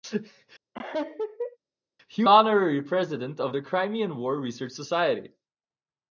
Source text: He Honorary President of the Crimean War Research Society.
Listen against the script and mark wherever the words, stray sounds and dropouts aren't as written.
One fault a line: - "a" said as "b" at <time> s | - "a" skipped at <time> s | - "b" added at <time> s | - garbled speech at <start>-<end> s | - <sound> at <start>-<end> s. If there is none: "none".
- laugh at 0.7-1.6 s